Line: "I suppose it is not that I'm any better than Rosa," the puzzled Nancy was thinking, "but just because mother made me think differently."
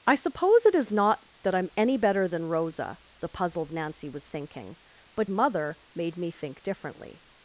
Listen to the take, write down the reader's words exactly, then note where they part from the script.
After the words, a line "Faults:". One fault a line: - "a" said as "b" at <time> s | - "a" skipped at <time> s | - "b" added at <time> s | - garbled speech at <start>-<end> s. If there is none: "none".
"I suppose it is not that I'm any better than Rosa," the puzzled Nancy was thinking, "but mother made me think differently."
Faults:
- "just because" skipped at 5.3 s